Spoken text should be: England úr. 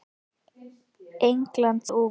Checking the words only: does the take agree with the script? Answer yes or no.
yes